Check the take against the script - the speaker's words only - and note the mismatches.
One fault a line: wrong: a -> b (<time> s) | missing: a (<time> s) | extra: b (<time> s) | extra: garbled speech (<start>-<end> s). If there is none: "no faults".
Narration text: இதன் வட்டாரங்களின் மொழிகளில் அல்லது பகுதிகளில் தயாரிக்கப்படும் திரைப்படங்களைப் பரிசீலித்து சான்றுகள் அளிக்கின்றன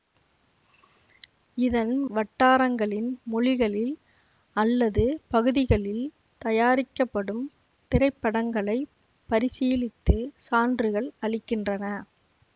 no faults